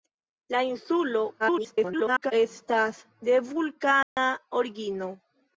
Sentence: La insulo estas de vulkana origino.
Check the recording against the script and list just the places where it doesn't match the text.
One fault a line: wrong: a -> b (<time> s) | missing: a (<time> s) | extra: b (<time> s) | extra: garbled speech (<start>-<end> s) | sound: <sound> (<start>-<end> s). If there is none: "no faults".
extra: garbled speech (1.4-2.3 s)
sound: dropout (4.0-4.2 s)